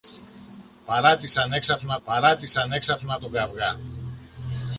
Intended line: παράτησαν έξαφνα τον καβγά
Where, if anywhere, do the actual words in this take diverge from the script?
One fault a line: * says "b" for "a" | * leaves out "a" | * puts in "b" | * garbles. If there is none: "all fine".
* puts in "παράτησαν έξαφνα"